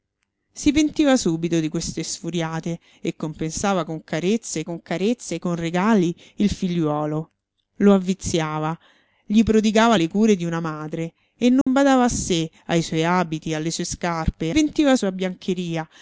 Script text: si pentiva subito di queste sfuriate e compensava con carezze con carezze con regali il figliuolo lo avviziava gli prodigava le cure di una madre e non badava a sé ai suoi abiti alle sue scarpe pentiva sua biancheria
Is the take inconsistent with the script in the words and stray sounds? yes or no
yes